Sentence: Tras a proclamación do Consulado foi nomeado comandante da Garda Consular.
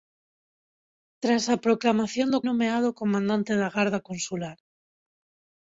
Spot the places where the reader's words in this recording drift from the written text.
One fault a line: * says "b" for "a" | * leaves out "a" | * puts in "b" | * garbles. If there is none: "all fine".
* leaves out "Consulado foi"